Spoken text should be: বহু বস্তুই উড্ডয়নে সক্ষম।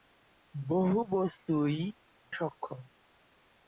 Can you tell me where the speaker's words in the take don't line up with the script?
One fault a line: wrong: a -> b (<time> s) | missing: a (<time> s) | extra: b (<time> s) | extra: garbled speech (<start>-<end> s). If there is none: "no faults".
missing: উড্ডয়নে (1.8 s)